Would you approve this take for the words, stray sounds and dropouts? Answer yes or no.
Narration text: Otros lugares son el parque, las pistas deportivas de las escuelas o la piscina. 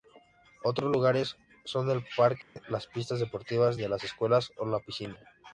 no